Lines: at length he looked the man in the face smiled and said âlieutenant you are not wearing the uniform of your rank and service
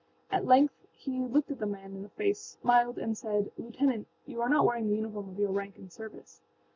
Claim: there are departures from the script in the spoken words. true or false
false